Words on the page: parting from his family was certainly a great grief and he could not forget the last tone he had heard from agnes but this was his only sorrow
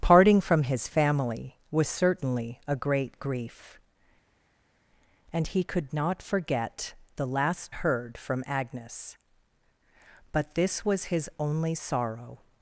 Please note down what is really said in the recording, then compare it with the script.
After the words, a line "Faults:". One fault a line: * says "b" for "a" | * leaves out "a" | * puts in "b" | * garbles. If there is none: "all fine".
parting from his family was certainly a great grief and he could not forget the last heard from agnes but this was his only sorrow
Faults:
* leaves out "tone he had"